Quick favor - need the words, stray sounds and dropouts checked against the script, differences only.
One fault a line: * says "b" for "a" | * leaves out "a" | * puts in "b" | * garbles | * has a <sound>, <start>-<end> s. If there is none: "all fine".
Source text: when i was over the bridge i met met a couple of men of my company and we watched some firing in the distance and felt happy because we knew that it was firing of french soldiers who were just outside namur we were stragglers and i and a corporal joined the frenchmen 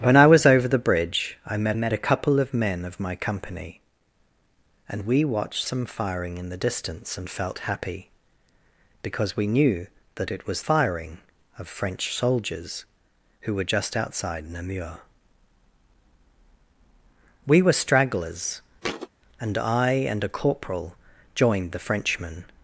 * has a thud, 18.8-19.1 s